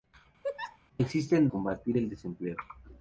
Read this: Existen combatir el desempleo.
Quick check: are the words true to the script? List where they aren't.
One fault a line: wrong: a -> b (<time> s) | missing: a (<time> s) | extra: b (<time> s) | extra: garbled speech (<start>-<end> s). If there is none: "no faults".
no faults